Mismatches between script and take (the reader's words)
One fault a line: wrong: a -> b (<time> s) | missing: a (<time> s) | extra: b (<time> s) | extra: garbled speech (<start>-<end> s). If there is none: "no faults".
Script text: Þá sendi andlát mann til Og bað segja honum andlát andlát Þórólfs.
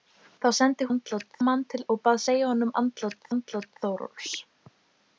no faults